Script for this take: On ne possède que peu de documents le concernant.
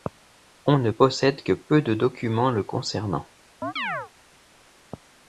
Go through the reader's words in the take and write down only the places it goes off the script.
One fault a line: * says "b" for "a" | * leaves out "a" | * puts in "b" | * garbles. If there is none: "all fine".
all fine